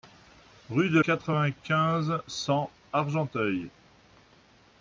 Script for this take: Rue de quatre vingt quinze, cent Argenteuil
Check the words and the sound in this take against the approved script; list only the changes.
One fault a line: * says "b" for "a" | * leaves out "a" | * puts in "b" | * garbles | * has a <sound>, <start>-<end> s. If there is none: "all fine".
all fine